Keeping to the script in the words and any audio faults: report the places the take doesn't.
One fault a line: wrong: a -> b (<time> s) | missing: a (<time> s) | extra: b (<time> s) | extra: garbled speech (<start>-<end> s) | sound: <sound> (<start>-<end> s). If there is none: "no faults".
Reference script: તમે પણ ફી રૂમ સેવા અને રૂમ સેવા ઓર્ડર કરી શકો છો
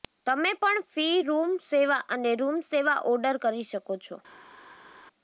no faults